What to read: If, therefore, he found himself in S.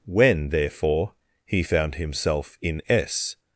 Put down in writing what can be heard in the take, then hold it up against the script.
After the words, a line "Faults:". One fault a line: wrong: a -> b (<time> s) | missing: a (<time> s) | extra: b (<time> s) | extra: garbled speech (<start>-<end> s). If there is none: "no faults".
When, therefore, he found himself in S.
Faults:
wrong: If -> When (0.1 s)